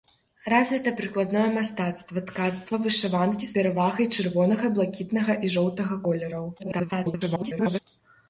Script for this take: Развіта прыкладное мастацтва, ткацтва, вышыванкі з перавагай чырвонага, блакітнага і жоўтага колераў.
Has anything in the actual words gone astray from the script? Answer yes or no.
yes